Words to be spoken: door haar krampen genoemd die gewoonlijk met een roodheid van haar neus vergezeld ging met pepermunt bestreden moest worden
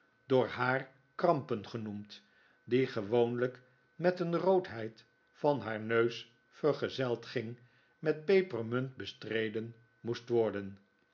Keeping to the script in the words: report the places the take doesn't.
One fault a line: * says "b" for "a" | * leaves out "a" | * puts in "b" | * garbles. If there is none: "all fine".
all fine